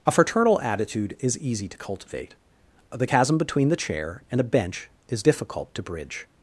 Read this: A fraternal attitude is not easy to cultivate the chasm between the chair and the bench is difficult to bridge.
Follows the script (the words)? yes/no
no